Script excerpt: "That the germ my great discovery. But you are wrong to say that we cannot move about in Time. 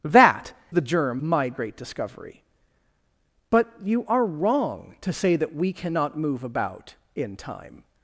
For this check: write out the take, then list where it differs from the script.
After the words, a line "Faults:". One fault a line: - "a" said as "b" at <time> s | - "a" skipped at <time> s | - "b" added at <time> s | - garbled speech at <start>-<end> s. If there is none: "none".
"That the germ my great discovery. But you are wrong to say that we cannot move about in Time.
Faults:
none